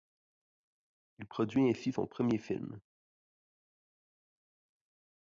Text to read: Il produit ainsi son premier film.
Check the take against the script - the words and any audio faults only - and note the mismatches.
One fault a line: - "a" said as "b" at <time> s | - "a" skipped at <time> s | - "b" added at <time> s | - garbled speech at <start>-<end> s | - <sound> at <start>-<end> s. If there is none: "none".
none